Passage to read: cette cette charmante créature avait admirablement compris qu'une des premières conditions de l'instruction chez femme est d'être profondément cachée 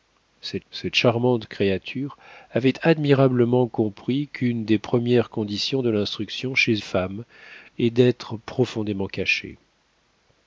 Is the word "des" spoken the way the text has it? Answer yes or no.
yes